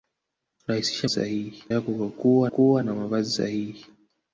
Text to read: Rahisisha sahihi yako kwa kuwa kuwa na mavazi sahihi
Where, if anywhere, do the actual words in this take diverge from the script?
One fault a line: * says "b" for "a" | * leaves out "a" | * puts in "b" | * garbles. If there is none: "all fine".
all fine